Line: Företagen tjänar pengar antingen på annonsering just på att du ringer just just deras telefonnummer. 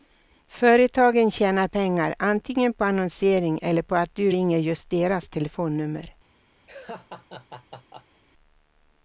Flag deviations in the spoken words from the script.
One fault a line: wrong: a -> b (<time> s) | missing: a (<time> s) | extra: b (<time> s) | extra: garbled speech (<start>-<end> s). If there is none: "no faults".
wrong: just -> eller (3.6 s)
missing: just (4.9 s)